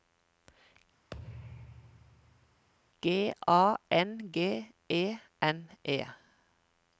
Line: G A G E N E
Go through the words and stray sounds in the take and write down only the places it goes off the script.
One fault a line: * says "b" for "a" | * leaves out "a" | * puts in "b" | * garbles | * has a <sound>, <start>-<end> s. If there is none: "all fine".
* has a thud, 1.1-2.7 s
* puts in "N"